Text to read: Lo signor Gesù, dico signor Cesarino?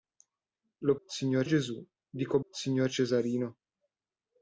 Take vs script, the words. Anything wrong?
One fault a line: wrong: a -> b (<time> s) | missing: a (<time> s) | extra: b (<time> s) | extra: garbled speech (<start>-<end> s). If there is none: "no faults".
no faults